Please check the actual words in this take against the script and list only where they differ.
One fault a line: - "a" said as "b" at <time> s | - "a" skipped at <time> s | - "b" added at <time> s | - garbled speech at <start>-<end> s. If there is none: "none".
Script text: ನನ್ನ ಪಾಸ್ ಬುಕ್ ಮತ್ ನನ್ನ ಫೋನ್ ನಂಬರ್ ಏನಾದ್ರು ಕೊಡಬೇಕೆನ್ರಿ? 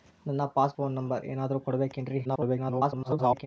- "ಬುಕ್ ಮತ್ ನನ್ನ" skipped at 0.8 s
- garbled speech at 2.2-3.5 s